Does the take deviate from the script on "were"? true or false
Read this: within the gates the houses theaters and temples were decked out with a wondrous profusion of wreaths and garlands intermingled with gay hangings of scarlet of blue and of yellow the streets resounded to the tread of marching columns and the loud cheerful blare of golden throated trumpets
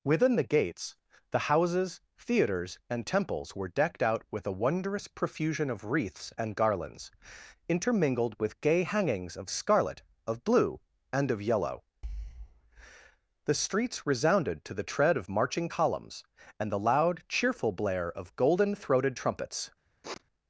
false